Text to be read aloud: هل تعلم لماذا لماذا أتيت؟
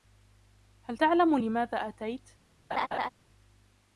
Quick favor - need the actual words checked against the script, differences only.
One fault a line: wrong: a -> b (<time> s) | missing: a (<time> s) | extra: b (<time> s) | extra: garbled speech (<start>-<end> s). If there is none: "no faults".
missing: لماذا (1.8 s)